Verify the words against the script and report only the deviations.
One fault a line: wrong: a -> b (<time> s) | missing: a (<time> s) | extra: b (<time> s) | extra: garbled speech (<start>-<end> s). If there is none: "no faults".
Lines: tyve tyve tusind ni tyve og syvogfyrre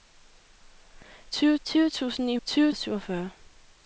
no faults